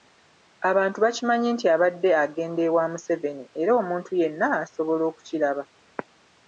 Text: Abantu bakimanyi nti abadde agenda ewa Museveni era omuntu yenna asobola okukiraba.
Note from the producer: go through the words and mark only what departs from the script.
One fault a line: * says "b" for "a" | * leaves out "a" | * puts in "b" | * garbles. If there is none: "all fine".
all fine